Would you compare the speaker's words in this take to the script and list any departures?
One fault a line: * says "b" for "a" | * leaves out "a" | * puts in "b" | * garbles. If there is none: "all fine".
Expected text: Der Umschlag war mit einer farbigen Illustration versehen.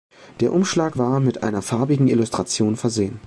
all fine